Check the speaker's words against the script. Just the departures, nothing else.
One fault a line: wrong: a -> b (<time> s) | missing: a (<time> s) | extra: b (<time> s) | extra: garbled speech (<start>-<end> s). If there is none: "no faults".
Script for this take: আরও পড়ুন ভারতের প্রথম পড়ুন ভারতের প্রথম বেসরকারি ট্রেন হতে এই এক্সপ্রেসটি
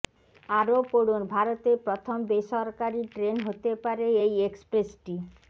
missing: পড়ুন ভারতের প্রথম (2.2 s)
extra: পারে (3.8 s)